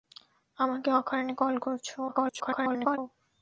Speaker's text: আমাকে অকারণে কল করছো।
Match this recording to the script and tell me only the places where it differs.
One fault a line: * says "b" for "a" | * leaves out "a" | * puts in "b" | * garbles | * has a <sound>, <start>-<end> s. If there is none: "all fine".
* garbles